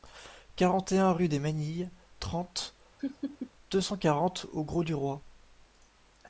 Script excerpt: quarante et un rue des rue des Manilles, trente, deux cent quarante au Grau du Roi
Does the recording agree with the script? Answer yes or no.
no